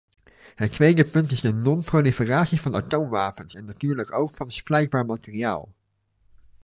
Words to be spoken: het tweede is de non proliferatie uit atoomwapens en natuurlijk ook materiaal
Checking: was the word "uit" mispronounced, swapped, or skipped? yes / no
yes